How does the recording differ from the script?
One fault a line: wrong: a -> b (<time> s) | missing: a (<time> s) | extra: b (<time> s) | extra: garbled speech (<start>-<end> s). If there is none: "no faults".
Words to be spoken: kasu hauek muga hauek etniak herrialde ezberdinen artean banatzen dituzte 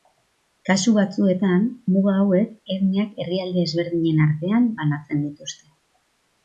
wrong: hauek -> batzuetan (0.9 s)